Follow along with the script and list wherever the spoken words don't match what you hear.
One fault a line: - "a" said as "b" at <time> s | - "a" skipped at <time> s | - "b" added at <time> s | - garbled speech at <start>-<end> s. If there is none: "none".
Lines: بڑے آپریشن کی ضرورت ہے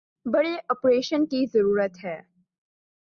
none